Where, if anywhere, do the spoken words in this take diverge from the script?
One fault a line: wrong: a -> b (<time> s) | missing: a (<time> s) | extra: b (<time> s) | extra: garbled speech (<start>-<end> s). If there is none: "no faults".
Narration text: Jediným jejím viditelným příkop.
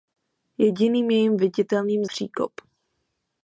no faults